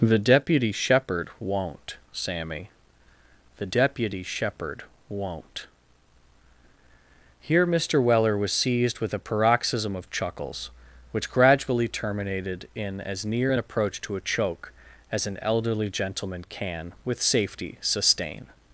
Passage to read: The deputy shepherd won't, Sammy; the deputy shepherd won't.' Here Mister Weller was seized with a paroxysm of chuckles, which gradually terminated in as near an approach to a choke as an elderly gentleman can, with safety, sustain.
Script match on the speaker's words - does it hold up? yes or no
yes